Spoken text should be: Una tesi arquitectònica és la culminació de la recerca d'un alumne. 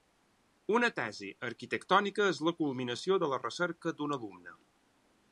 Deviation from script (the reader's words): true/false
false